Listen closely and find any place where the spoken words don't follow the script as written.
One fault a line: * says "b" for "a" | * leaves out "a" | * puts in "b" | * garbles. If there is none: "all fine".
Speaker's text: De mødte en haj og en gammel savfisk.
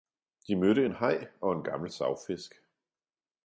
all fine